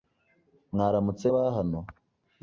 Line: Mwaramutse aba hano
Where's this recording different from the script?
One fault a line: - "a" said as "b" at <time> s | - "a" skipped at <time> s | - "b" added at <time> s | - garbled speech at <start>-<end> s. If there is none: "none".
none